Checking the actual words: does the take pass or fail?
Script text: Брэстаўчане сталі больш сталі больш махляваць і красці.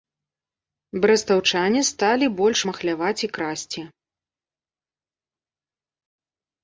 fail